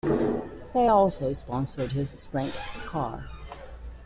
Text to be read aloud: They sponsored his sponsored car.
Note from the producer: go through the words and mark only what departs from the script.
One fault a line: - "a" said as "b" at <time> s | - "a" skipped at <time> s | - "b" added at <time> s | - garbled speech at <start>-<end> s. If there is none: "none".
- "also" added at 0.9 s
- "sponsored" said as "sprint" at 2.1 s